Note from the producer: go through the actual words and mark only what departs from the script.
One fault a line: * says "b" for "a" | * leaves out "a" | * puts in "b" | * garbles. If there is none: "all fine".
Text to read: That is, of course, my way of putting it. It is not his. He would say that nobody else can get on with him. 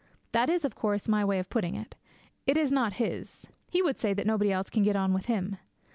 all fine